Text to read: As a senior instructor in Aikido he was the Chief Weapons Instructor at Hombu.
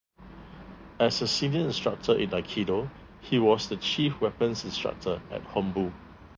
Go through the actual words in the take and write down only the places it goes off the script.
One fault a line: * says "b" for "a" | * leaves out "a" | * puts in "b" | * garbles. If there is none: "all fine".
all fine